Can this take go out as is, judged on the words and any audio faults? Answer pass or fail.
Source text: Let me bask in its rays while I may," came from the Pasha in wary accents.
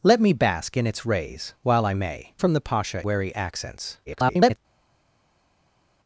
fail